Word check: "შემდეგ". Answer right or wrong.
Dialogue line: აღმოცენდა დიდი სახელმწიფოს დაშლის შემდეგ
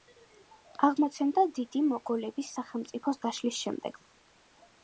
right